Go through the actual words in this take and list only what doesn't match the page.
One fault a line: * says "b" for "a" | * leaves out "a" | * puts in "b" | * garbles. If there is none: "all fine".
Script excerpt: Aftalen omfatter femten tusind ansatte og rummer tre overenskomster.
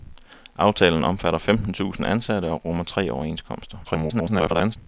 * garbles